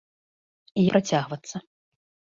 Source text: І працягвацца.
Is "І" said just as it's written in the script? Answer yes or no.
yes